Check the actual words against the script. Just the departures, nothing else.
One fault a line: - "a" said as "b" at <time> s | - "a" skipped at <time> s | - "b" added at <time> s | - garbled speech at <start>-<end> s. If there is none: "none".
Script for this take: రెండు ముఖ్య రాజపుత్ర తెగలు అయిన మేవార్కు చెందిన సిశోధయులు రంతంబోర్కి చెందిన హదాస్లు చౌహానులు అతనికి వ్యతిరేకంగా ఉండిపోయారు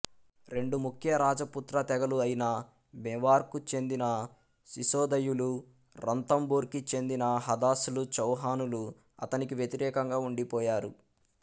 none